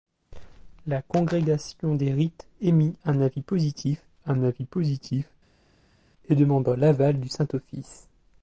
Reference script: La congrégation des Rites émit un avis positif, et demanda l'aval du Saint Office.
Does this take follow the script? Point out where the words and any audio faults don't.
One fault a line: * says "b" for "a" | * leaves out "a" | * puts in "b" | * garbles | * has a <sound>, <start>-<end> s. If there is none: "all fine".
* puts in "un avis positif"